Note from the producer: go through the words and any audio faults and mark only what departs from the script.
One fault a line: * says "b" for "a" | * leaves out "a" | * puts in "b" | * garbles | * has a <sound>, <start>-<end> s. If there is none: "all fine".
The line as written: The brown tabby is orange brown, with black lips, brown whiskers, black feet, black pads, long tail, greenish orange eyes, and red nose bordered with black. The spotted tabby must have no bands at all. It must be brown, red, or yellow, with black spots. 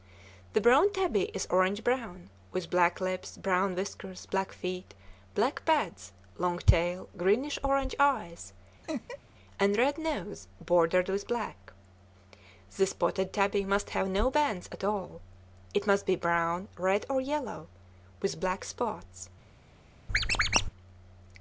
* has a laugh, 8.8-9.2 s
* has a squeak, 20.1-20.7 s